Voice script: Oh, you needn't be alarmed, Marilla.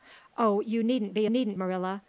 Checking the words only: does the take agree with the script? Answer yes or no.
no